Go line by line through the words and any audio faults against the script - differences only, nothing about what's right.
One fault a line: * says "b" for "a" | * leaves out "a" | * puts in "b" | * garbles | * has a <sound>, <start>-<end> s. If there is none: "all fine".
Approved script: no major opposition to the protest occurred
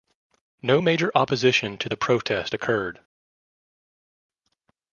all fine